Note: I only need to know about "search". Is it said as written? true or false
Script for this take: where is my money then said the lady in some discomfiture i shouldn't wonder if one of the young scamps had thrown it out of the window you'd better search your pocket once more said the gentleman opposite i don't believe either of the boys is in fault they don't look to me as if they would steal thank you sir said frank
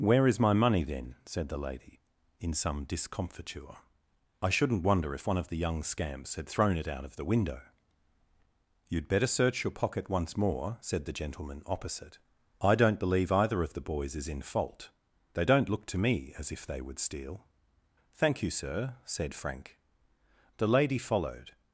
true